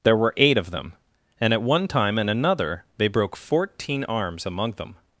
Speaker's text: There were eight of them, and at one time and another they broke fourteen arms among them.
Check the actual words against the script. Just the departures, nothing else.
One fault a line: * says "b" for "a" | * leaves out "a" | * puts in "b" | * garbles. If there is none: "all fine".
all fine